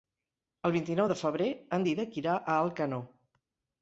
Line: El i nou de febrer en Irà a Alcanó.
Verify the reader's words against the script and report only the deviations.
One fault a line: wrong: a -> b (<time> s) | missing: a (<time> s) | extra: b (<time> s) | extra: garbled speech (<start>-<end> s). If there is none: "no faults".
extra: vint (0.8 s)
extra: Dídac (1.9 s)